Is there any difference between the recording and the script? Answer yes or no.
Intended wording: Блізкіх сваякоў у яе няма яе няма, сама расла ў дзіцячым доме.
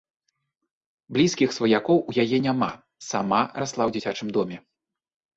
yes